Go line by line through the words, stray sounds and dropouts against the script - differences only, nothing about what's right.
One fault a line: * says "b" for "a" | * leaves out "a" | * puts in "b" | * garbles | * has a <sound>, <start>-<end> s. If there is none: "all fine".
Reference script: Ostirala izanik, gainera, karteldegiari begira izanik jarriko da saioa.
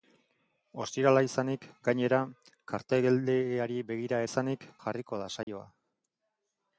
* has a dropout, 5.4-5.5 s